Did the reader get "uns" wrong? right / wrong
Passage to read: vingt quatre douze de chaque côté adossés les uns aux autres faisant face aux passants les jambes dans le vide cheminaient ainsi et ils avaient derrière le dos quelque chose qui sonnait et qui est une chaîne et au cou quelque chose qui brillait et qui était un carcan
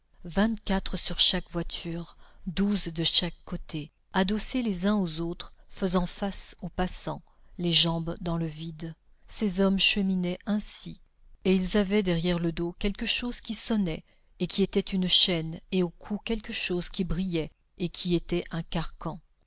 right